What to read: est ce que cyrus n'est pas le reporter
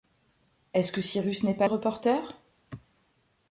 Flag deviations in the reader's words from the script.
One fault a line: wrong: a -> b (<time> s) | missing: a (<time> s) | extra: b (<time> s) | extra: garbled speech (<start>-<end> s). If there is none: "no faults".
no faults